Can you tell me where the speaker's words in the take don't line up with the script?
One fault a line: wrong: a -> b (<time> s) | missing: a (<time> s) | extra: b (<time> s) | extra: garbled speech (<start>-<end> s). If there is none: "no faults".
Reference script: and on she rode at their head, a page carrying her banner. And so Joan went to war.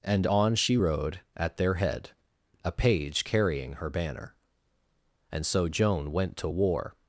no faults